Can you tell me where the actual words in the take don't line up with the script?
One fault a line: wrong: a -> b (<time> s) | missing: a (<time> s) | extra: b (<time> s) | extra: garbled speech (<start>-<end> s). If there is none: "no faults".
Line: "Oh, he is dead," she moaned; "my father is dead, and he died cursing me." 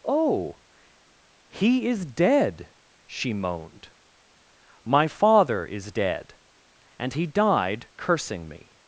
no faults